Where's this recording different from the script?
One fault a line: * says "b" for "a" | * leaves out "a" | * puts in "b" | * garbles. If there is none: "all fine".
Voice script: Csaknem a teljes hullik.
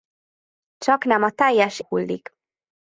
all fine